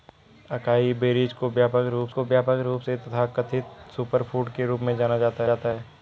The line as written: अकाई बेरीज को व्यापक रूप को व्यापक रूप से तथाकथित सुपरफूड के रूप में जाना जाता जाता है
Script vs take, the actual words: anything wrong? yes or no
no